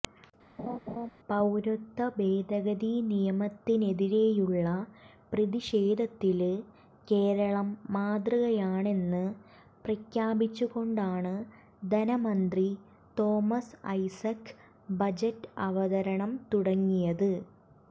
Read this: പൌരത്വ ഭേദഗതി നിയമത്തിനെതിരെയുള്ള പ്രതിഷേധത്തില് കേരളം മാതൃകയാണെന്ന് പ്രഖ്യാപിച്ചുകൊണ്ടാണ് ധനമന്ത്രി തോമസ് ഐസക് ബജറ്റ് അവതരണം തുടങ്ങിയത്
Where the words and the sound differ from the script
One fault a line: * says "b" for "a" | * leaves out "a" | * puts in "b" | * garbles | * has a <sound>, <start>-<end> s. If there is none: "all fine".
* has a laugh, 0.6-1.1 s